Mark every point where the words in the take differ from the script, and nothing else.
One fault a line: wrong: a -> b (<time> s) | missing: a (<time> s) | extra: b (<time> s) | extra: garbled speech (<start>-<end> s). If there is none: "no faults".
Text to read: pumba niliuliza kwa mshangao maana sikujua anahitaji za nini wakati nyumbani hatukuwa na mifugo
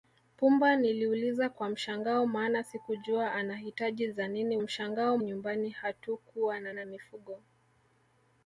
wrong: wakati -> mshangao (4.6 s)
extra: na (6.7 s)